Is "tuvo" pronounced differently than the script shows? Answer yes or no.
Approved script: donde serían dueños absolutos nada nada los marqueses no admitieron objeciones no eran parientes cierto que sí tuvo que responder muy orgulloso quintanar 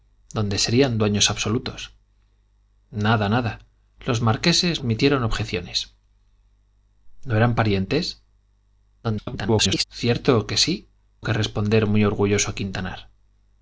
yes